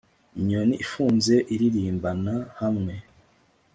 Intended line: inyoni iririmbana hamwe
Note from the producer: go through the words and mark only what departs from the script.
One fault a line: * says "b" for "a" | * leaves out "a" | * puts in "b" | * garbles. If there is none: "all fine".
* puts in "ifunze"